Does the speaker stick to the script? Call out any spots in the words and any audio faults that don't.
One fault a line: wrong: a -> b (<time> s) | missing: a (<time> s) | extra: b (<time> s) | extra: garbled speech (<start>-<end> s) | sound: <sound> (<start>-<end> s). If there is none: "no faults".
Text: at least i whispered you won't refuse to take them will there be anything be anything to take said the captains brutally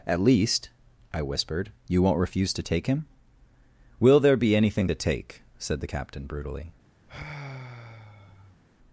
wrong: them -> him (2.9 s)
missing: be anything (4.9 s)
wrong: captains -> captain (5.8 s)
sound: sigh (7.1-8.6 s)